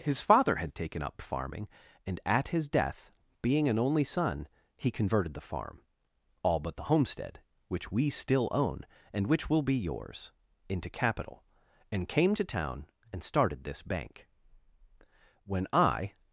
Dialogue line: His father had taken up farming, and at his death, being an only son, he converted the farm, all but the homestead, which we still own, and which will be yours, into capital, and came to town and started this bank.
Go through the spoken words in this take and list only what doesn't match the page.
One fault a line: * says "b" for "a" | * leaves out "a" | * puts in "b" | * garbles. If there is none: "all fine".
* puts in "When I"